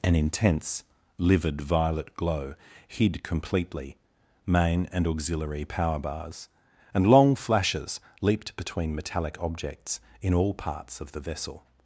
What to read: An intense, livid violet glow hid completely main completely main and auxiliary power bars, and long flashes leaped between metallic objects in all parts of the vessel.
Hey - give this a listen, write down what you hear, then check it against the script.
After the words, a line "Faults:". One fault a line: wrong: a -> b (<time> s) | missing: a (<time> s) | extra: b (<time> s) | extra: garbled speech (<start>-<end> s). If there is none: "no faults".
An intense, livid violet glow hid completely main and auxiliary power bars, and long flashes leaped between metallic objects in all parts of the vessel.
Faults:
missing: completely main (4.9 s)